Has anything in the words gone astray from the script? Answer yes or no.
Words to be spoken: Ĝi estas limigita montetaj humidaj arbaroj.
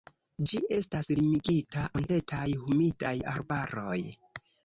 no